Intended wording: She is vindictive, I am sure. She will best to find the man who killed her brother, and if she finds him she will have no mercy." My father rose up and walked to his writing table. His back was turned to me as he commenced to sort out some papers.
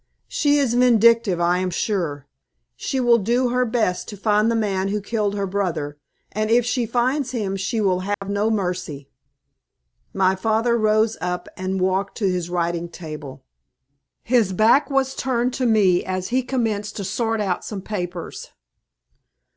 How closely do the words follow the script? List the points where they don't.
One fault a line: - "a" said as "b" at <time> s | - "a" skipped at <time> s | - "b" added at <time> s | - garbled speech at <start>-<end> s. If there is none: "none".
- "do her" added at 3.2 s